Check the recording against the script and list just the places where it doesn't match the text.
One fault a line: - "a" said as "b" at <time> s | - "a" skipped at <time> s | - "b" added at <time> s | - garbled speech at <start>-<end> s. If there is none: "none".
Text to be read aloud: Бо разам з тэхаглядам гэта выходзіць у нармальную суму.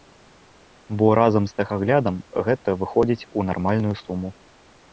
none